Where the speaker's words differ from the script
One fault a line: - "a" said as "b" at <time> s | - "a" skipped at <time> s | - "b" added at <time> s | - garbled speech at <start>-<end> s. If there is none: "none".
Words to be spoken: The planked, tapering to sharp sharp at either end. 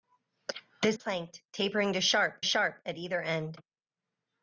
none